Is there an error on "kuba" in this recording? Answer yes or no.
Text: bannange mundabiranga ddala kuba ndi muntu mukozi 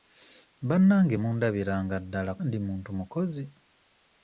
yes